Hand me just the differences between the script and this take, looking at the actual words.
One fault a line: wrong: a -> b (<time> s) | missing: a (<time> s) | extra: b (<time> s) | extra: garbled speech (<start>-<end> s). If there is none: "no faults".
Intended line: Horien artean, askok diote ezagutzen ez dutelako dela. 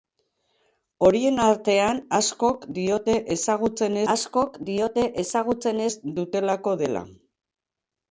extra: askok diote ezagutzen (4.1 s)